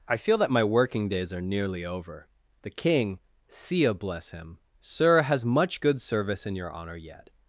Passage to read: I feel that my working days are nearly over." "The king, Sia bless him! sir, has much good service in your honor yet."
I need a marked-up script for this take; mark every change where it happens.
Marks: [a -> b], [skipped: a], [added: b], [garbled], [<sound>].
I feel that my working days are nearly over." "The king, Sia bless him! sir, has much good service in your honor yet."